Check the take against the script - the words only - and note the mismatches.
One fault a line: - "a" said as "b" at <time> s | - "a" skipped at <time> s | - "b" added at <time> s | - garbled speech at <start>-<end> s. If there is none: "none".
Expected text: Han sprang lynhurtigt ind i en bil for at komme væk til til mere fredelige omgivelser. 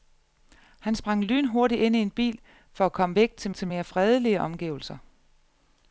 none